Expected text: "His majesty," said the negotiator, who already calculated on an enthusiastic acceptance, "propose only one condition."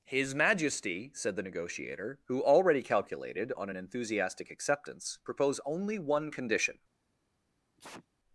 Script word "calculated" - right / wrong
right